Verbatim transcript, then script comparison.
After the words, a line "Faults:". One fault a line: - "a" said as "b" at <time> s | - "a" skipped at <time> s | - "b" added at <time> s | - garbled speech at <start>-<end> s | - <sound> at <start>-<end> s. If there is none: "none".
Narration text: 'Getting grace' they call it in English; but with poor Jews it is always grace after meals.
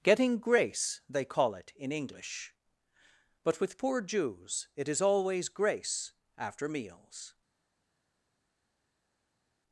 'Getting grace' they call it in English; but with poor Jews it is always grace after meals.
Faults:
none